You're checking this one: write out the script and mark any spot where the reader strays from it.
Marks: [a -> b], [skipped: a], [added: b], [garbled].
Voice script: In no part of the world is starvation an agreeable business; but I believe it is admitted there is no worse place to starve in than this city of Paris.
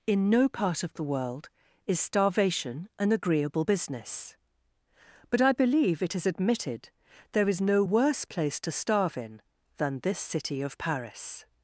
In no part of the world is starvation an agreeable business; but I believe it is admitted there is no worse place to starve in than this city of Paris.